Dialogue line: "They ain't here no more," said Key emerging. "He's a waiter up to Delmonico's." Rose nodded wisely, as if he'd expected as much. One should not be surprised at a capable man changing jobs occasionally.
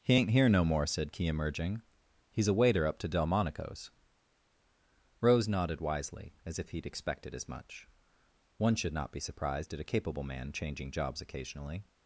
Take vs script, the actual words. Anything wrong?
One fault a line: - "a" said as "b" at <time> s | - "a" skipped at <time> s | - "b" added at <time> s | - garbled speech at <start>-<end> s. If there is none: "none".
- "They" said as "He" at 0.0 s